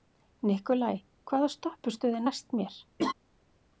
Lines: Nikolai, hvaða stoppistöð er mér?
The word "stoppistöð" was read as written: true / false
true